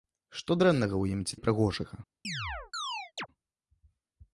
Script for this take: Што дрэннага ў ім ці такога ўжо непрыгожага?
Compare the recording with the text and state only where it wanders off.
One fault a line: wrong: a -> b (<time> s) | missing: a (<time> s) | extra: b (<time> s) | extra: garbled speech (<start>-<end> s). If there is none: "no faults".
missing: такога ўжо (1.4 s)